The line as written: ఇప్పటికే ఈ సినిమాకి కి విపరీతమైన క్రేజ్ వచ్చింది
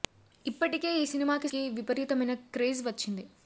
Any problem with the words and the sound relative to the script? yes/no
no